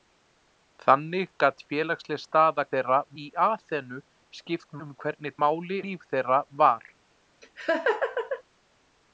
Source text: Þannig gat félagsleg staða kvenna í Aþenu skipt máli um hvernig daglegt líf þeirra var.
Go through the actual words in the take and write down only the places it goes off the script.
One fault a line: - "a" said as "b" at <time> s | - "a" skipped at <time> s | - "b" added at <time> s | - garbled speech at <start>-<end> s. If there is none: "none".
- "kvenna" said as "þeirra" at 2.8 s
- "máli" skipped at 4.8 s
- "daglegt" said as "máli" at 5.4 s